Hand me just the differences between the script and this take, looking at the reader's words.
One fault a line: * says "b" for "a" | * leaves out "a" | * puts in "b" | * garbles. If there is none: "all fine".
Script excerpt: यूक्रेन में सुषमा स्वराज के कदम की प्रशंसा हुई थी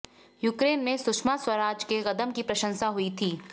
all fine